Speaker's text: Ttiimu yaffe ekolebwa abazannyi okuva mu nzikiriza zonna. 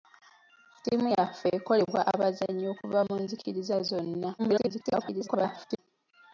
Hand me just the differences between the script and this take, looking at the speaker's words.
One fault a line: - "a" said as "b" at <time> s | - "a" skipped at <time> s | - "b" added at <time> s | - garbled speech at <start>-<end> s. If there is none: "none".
- garbled speech at 4.4-5.8 s